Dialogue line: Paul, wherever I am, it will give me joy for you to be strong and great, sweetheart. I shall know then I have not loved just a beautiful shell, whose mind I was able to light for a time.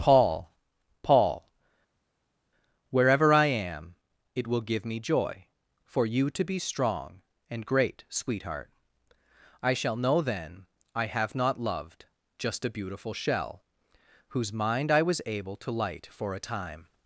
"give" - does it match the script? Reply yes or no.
yes